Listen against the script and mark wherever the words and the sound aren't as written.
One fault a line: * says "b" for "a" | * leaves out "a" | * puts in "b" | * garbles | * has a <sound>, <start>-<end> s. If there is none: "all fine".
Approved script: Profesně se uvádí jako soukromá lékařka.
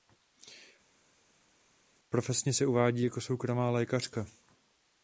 all fine